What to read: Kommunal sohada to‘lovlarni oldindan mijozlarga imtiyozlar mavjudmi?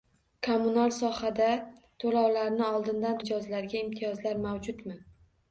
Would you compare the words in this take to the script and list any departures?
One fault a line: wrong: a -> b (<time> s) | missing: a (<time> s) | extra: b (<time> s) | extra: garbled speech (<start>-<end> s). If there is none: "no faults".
no faults